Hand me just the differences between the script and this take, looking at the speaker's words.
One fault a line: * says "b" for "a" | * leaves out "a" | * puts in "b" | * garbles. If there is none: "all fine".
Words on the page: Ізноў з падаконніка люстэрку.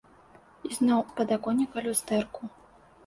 all fine